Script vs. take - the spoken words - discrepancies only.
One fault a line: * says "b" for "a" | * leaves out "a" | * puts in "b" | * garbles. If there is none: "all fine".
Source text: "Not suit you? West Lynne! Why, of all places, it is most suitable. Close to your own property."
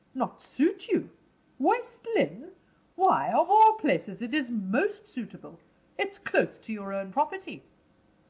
* puts in "It's"